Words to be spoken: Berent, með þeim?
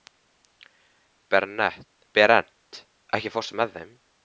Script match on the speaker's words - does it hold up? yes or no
no